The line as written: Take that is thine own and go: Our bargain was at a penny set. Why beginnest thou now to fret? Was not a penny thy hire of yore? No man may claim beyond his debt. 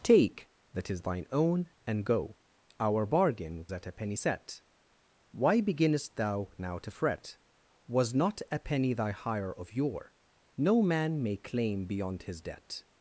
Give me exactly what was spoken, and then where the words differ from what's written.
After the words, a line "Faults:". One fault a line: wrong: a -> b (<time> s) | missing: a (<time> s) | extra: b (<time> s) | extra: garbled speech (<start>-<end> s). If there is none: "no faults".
Take that is thine own and go: Our bargain at a penny set. Why beginnest thou now to fret? Was not a penny thy hire of yore? No man may claim beyond his debt.
Faults:
missing: was (3.6 s)